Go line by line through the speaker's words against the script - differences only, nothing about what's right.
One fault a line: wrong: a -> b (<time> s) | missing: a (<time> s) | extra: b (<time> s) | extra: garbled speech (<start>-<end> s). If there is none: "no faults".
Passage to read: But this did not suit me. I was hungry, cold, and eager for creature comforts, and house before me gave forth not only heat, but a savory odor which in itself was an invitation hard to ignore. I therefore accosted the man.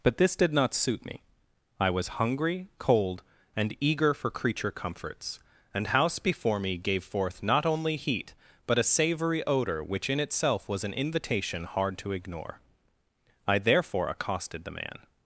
no faults